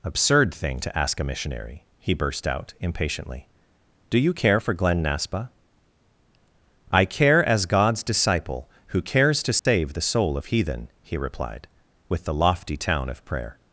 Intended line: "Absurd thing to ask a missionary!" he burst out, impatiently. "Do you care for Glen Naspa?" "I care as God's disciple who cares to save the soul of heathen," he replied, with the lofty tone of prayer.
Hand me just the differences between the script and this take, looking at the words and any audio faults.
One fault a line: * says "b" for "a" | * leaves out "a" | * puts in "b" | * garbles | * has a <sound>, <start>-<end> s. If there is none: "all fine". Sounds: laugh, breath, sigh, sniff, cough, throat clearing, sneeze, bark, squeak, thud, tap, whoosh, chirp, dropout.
* has a dropout, 9.6-9.7 s
* says "town" for "tone"